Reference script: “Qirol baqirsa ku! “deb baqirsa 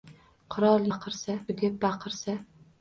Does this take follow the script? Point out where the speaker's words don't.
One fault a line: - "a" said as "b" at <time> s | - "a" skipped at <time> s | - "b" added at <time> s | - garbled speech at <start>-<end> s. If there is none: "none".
none